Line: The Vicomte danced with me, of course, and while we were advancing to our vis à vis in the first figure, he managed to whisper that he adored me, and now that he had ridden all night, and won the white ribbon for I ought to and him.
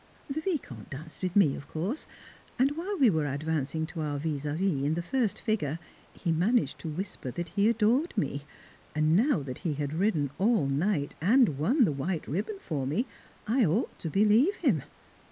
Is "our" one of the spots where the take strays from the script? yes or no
no